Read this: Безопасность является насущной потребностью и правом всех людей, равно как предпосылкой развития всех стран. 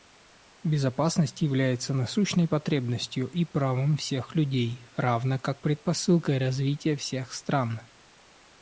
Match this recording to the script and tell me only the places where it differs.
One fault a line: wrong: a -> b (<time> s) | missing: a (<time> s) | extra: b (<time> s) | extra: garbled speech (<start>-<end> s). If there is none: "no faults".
no faults